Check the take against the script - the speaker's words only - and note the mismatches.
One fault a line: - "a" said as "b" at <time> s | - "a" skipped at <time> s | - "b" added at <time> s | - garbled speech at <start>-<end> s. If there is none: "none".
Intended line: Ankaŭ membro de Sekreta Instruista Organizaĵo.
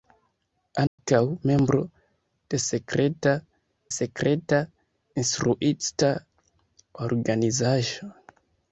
- "Sekreta" added at 3.9 s